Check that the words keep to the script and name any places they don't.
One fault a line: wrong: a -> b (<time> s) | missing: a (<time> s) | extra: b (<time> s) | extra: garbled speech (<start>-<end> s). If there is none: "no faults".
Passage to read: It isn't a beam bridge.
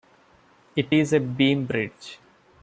wrong: isn't -> is (0.9 s)